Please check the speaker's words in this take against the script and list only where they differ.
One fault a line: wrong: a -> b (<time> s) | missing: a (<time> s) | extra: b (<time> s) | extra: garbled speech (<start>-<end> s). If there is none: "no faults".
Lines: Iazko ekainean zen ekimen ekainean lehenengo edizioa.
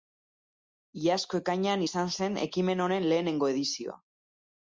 extra: izan (1.9 s)
wrong: ekainean -> honen (2.9 s)